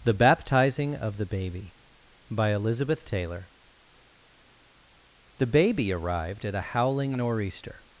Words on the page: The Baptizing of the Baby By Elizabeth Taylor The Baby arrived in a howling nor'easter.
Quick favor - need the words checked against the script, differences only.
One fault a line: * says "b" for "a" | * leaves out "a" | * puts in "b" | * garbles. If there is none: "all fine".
* says "at" for "in"